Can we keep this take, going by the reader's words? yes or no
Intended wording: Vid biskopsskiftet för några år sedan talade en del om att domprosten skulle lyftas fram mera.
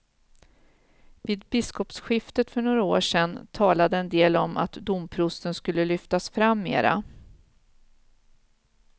yes